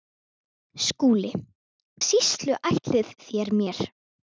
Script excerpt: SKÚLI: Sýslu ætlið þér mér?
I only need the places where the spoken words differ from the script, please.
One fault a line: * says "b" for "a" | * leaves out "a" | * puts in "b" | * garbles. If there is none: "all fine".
all fine